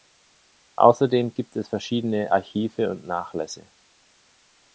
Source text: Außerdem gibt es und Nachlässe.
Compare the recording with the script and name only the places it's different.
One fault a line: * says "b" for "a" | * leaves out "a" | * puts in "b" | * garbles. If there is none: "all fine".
* puts in "verschiedene Archive"